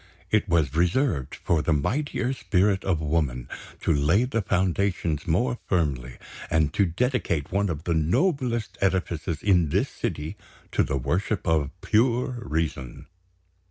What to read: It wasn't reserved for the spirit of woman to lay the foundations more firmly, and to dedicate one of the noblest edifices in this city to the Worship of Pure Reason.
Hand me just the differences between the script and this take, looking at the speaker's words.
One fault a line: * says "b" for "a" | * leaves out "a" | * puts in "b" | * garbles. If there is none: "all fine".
* says "was" for "wasn't"
* puts in "mightier"